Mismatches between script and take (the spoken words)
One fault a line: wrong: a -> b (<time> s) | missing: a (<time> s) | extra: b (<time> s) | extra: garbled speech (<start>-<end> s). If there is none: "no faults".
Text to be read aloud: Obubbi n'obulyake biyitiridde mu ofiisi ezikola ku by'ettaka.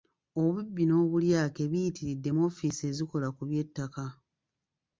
no faults